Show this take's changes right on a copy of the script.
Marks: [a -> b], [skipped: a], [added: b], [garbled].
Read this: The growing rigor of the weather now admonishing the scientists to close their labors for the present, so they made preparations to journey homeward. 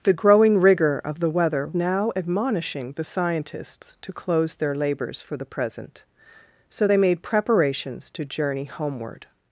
The growing rigor of the weather now admonishing the scientists to close their labors for the present, so they made preparations to journey homeward.